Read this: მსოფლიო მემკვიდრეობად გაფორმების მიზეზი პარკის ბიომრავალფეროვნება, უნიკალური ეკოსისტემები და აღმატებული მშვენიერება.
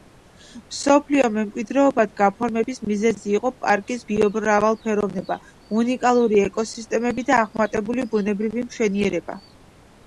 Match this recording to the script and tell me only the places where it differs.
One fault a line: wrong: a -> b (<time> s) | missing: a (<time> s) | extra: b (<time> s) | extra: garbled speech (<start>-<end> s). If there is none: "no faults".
extra: იყო (3.4 s)
extra: ბუნებრივი (8.1 s)